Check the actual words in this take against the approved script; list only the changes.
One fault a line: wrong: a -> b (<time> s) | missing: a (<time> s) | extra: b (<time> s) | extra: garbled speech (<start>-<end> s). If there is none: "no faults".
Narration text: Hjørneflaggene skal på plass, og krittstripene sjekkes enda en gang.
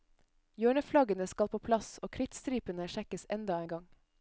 no faults